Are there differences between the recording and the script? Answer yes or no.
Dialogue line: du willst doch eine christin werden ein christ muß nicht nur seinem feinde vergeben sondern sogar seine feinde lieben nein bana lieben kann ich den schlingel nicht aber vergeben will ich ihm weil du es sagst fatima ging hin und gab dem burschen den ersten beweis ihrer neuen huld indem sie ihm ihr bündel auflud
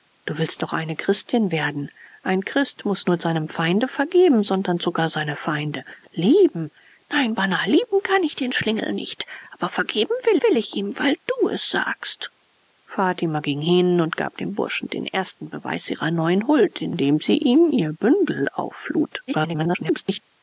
yes